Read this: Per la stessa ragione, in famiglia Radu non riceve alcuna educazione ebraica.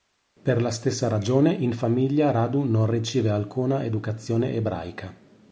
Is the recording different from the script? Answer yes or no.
no